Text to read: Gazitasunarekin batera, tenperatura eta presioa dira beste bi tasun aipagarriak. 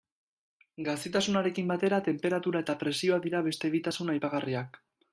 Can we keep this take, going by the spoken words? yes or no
yes